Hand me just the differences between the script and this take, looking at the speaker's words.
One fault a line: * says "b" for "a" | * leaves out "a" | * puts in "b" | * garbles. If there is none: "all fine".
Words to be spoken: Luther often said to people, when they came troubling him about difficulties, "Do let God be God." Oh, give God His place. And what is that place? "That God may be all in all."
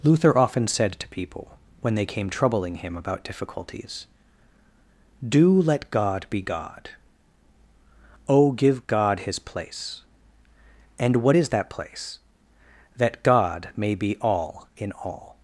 all fine